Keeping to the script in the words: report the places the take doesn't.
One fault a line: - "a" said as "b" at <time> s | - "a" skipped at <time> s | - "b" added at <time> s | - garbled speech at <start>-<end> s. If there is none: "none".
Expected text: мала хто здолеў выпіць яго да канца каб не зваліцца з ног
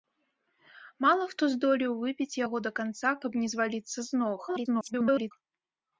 - garbled speech at 4.5-5.3 s